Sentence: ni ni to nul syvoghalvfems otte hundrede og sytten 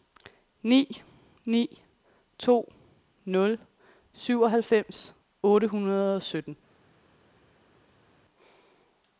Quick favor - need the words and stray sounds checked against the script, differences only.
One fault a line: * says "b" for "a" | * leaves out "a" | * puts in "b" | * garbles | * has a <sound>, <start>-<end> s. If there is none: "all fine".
all fine